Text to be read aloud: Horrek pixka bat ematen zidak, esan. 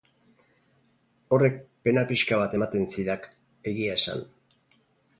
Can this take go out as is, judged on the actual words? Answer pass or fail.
fail